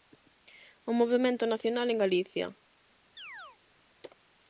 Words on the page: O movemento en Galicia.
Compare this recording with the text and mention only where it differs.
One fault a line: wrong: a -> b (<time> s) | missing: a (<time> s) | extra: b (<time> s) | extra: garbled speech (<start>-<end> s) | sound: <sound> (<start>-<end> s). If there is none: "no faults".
extra: nacional (1.4 s)
sound: chirp (3.2-3.6 s)